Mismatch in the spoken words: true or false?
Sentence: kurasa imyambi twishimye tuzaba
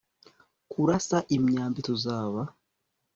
true